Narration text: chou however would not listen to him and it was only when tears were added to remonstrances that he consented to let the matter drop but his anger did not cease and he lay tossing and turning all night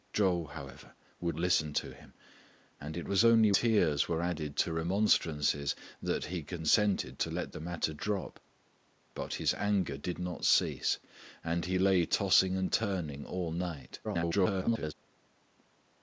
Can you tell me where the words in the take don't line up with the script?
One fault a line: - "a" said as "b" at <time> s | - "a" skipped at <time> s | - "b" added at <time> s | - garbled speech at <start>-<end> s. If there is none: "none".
- "not" skipped at 1.4 s
- "when" skipped at 3.5 s
- garbled speech at 14.0-14.9 s